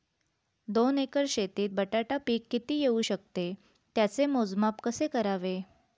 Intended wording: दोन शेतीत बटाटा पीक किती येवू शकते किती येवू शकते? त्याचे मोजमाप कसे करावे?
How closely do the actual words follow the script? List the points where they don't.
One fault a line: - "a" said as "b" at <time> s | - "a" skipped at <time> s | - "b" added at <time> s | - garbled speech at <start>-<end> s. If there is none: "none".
- "एकर" added at 1.0 s
- "किती येवू शकते" skipped at 3.5 s